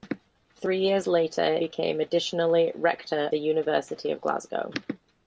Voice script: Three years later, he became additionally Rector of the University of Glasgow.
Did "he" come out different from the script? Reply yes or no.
yes